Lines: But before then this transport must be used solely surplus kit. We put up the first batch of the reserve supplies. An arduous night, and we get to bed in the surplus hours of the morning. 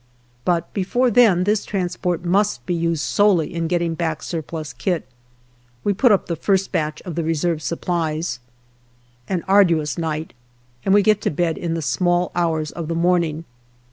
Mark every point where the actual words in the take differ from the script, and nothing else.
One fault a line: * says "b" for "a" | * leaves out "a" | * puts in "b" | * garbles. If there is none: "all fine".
* puts in "in getting back"
* says "small" for "surplus"